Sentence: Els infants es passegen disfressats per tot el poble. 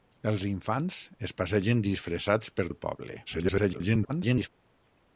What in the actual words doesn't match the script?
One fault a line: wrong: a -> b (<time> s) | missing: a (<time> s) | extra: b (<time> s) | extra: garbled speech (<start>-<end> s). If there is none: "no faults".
missing: tot (2.7 s)
extra: garbled speech (3.3-4.5 s)